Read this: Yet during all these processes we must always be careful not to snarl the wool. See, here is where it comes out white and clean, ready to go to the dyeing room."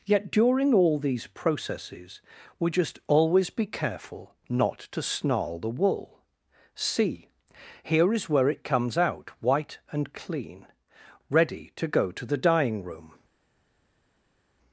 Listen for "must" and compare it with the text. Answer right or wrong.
wrong